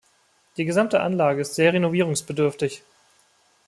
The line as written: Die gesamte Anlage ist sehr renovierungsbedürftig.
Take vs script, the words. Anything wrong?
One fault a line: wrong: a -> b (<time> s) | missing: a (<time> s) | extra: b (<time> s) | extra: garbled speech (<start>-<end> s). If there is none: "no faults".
no faults